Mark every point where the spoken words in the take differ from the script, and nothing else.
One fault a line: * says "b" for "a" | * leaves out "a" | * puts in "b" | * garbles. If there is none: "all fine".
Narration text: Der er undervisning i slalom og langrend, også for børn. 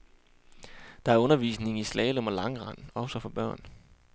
all fine